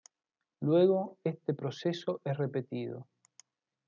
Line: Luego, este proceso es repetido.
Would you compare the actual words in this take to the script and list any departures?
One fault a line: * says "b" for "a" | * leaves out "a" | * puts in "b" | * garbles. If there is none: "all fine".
all fine